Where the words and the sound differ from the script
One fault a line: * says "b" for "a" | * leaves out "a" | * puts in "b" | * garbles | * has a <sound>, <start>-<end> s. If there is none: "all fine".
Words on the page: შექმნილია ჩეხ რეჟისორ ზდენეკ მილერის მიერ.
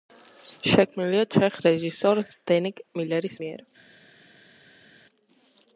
all fine